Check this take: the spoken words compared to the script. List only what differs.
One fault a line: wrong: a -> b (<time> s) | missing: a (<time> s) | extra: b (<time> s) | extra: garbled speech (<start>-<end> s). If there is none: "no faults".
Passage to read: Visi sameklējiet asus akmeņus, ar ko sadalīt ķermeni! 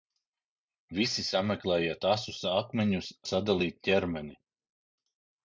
missing: ar ko (3.1 s)